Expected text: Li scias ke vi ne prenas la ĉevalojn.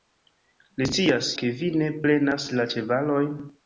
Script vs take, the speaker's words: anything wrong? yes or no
no